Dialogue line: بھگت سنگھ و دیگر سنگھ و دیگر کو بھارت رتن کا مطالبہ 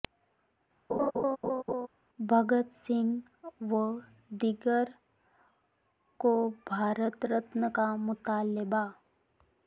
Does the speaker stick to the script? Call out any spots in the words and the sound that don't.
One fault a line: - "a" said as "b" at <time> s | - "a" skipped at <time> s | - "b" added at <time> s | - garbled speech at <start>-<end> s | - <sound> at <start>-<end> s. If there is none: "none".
- laugh at 0.9-1.9 s
- "سنگھ و دیگر" skipped at 4.9 s